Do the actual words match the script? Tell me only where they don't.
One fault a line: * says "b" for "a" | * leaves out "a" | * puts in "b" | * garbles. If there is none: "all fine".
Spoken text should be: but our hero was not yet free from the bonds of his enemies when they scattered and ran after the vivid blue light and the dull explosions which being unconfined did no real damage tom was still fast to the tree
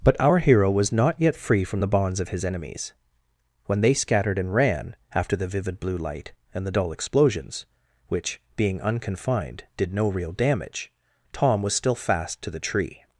all fine